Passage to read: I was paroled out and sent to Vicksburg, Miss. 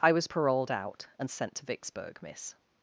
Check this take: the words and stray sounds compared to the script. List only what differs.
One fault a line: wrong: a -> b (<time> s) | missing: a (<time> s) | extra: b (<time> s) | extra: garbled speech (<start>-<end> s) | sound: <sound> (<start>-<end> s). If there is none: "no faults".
no faults